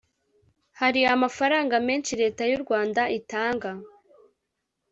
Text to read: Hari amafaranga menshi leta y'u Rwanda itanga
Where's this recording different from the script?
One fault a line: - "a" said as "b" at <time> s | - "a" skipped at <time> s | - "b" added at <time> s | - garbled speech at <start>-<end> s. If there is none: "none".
none